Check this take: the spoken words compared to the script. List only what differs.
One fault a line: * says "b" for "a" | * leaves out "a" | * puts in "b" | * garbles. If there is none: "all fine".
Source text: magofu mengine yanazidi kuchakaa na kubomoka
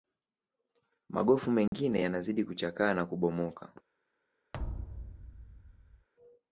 all fine